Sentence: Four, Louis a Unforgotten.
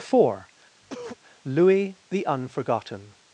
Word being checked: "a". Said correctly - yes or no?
no